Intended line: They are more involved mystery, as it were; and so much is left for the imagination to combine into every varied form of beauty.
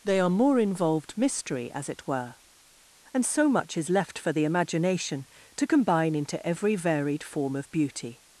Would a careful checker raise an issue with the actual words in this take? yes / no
no